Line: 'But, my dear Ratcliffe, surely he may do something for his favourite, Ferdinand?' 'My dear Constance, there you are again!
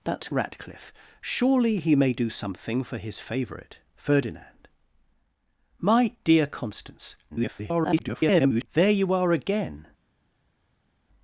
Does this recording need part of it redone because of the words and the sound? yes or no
yes